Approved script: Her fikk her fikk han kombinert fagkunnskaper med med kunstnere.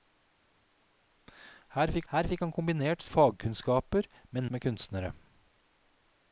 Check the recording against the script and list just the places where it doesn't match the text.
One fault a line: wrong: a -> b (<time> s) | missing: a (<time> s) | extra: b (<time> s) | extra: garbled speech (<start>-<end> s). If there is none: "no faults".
no faults